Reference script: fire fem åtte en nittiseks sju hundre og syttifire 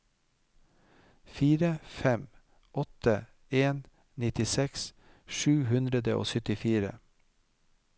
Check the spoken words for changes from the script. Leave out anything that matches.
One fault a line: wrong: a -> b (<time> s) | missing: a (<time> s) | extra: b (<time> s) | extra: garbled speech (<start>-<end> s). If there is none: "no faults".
no faults